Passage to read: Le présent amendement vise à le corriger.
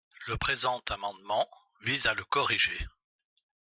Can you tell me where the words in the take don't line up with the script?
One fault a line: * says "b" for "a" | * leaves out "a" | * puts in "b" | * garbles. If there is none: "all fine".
all fine